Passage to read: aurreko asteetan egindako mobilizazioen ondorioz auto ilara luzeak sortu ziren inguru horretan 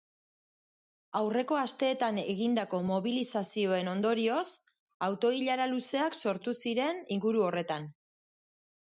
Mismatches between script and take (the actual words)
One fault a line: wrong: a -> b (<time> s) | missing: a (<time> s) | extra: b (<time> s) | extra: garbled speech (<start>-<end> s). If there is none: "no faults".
no faults